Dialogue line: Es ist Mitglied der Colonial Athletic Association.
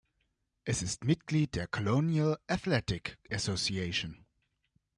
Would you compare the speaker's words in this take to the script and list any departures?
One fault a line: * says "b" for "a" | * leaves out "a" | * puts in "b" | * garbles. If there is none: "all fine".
all fine